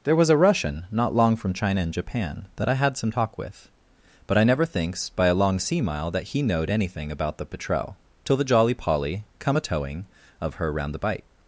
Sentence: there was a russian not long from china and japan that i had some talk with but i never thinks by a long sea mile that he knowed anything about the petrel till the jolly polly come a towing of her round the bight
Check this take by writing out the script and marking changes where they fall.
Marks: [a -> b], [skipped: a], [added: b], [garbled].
there was a russian not long from china and japan that i had some talk with but i never thinks by a long sea mile that he knowed anything about the petrel till the jolly polly come a towing of her round the bight